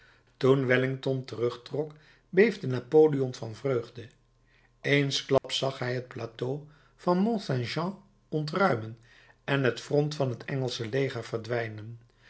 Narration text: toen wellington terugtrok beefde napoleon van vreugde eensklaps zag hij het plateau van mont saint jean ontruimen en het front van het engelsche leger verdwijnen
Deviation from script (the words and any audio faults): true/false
true